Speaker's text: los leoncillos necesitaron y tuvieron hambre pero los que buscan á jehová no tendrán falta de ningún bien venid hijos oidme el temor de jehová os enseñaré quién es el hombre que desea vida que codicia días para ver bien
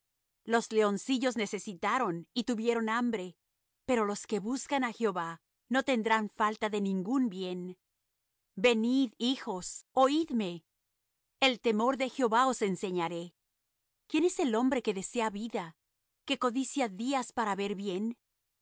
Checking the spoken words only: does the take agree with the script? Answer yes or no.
yes